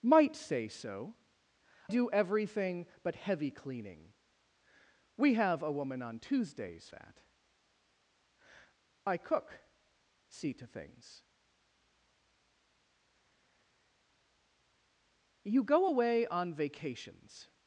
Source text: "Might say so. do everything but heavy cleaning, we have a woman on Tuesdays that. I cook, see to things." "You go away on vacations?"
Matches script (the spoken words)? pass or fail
pass